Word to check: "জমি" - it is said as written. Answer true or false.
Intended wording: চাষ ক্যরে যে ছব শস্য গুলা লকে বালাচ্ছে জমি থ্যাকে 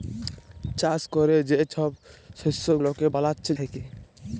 false